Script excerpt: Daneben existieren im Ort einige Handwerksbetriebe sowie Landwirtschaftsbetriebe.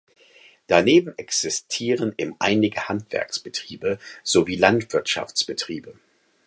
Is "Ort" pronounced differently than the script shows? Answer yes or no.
yes